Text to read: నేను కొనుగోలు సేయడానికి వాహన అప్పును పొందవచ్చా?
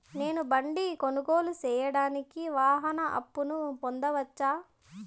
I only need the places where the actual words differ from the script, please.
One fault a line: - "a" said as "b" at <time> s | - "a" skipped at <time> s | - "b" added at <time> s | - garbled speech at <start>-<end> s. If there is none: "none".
- "బండి" added at 0.4 s